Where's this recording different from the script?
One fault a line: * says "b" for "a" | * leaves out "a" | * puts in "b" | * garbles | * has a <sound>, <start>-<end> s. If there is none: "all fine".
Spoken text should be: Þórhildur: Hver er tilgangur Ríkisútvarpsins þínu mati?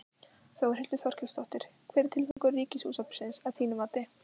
* puts in "Þorkelsdóttir"
* has a dropout, 2.3-2.4 s
* puts in "að"